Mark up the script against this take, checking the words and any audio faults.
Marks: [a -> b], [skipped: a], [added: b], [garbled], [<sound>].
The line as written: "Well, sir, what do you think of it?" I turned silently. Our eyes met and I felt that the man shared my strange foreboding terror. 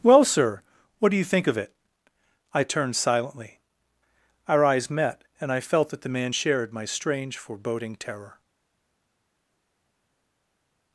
"Well, sir, what do you think of it?" I turned silently. Our eyes met and I felt that the man shared my strange foreboding terror.